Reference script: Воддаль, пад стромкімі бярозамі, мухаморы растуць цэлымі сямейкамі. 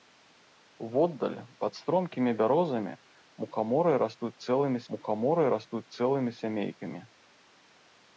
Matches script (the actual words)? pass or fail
fail